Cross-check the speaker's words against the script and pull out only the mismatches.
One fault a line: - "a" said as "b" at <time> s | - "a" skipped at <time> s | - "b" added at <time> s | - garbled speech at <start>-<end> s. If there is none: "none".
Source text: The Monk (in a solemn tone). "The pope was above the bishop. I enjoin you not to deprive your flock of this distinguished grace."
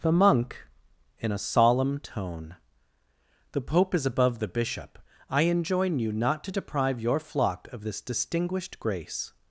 - "was" said as "is" at 3.9 s